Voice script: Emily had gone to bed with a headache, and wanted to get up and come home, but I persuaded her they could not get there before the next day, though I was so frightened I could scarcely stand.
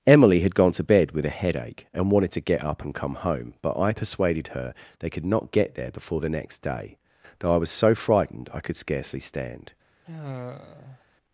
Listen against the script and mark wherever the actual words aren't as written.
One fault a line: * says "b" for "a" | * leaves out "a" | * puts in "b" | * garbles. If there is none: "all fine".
all fine